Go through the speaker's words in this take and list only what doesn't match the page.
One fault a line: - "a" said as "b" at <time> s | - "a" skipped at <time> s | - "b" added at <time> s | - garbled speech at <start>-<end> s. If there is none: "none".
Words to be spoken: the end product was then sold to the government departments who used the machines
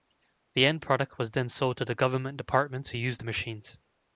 none